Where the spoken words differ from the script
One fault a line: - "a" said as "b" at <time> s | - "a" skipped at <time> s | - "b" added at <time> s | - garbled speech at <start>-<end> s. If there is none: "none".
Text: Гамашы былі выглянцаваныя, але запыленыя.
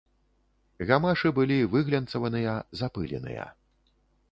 - "але" skipped at 2.5 s